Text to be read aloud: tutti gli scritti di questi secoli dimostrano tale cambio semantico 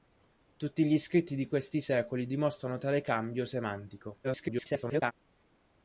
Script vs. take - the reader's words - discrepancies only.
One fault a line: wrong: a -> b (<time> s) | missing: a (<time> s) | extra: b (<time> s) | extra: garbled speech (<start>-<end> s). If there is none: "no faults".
extra: garbled speech (4.2-5.1 s)